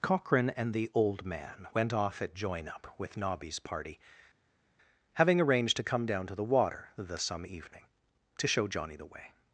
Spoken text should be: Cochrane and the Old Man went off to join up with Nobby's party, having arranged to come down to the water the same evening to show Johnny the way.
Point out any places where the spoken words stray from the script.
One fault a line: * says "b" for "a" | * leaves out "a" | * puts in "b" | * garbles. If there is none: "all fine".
* says "at" for "to"
* says "some" for "same"